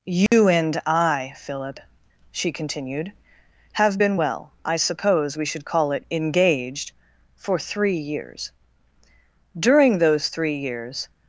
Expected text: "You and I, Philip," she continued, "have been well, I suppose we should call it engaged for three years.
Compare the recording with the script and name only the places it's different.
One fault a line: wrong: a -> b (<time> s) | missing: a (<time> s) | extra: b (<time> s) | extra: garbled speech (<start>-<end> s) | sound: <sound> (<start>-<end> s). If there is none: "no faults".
sound: dropout (0.3-0.3 s)
extra: During those three years (9.5 s)